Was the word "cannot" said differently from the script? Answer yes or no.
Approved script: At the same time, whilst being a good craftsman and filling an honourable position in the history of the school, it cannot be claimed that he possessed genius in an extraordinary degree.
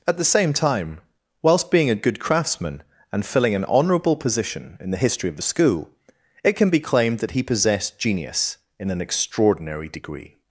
yes